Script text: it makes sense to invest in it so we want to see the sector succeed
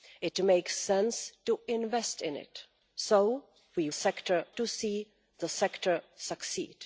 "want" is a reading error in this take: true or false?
true